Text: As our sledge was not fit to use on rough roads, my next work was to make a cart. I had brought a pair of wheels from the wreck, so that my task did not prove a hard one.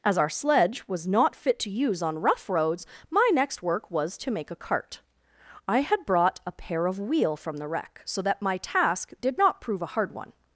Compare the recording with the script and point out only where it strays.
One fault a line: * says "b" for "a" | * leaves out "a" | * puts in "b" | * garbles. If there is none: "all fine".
* says "wheel" for "wheels"